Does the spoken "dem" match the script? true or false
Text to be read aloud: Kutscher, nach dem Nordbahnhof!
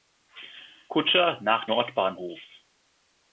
false